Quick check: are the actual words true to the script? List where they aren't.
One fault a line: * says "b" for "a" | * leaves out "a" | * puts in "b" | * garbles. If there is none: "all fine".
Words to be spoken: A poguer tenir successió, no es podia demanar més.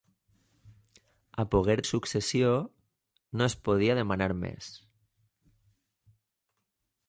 * leaves out "tenir"